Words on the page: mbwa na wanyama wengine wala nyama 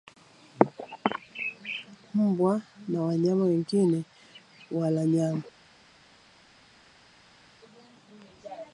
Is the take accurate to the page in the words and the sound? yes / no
yes